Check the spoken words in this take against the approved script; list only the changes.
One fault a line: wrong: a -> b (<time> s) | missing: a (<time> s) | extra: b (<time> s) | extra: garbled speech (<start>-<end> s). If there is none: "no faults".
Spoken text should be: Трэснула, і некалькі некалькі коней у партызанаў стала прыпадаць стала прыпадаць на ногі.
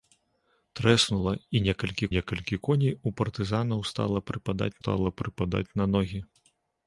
no faults